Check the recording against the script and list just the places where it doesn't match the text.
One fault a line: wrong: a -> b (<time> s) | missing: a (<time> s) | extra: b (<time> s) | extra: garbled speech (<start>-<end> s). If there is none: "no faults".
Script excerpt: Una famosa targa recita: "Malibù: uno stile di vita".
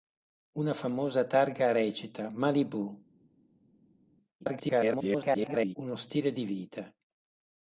extra: garbled speech (4.4-5.8 s)